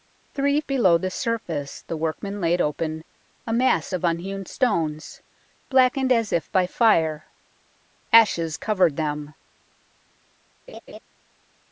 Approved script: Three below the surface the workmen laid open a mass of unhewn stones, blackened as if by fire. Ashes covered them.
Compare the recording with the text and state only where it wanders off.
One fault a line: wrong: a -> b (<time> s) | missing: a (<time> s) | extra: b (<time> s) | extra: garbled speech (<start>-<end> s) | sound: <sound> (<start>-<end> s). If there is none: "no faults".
sound: laugh (10.7-11.0 s)